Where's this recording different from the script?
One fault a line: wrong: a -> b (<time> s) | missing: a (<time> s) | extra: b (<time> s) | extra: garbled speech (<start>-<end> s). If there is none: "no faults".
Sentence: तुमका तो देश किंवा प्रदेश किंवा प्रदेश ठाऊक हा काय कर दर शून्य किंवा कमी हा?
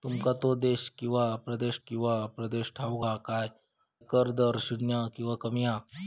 no faults